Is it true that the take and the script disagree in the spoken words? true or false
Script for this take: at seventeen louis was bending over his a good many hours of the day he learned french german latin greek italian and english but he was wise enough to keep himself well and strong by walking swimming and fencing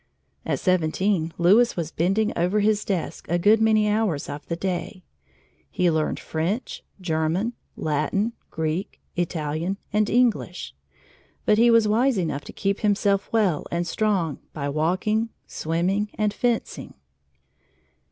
true